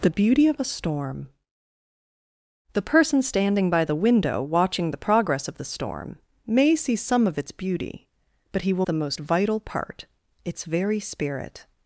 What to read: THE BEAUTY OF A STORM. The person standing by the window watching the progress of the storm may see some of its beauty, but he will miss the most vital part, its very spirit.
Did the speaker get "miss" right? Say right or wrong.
wrong